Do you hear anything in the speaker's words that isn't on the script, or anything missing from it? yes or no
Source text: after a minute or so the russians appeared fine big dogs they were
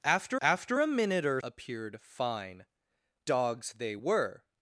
yes